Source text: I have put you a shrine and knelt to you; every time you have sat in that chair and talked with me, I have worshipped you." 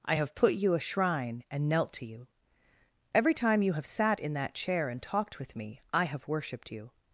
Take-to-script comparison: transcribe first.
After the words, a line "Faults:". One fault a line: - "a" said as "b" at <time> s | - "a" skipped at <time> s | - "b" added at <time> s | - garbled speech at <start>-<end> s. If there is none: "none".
I have put you a shrine and knelt to you; every time you have sat in that chair and talked with me, I have worshipped you."
Faults:
none